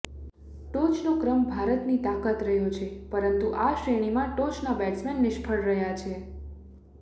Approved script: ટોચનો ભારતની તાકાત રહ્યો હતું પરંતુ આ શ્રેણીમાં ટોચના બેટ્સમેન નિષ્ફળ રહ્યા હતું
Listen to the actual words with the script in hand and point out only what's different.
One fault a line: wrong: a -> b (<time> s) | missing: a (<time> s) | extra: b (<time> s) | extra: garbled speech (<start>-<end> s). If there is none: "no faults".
extra: ક્રમ (1.2 s)
wrong: હતું -> છે (2.7 s)
wrong: હતું -> છે (6.0 s)